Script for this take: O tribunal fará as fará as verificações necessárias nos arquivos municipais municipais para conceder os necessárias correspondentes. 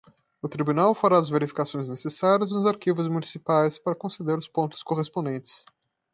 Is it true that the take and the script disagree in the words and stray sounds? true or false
true